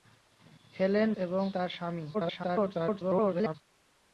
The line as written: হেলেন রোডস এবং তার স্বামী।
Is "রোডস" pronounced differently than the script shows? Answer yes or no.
yes